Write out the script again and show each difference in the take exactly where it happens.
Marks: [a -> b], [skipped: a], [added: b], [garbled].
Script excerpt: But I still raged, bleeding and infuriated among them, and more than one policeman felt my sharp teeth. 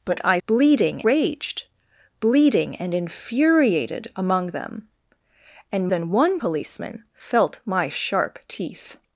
But I [still -> bleeding] raged, bleeding and infuriated among them, and [skipped: more] than one policeman felt my sharp teeth.